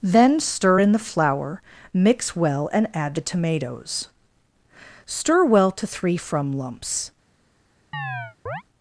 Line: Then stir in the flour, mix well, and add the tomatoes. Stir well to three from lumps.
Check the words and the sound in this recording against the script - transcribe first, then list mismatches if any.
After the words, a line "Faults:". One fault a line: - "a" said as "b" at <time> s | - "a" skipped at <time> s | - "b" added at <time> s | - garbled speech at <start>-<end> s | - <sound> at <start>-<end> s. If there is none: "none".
Then stir in the flour, mix well, and add the tomatoes. Stir well to three from lumps.
Faults:
- chirp at 7.9-8.6 s